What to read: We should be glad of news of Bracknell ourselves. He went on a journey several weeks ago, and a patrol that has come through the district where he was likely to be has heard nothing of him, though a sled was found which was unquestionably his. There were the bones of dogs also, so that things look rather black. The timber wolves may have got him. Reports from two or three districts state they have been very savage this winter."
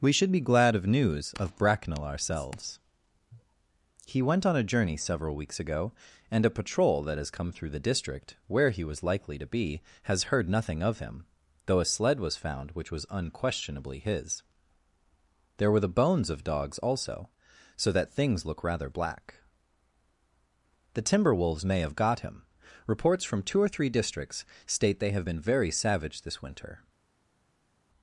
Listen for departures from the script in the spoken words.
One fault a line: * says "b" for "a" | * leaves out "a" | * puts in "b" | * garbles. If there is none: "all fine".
all fine